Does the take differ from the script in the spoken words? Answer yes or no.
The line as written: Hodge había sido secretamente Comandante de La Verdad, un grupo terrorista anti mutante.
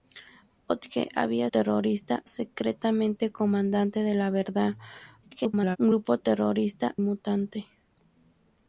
yes